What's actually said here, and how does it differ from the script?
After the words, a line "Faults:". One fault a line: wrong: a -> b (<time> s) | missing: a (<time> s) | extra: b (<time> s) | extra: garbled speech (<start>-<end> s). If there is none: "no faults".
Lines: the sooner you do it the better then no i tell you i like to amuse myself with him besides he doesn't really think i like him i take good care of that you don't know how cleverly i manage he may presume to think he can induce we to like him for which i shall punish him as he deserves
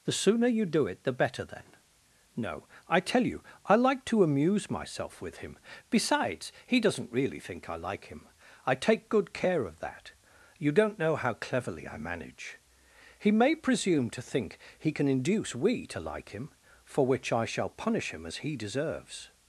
the sooner you do it the better then no i tell you i like to amuse myself with him besides he doesn't really think i like him i take good care of that you don't know how cleverly i manage he may presume to think he can induce we to like him for which i shall punish him as he deserves
Faults:
no faults